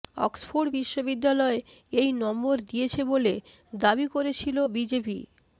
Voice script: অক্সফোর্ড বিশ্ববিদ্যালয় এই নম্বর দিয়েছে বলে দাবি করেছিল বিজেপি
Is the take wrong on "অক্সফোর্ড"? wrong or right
right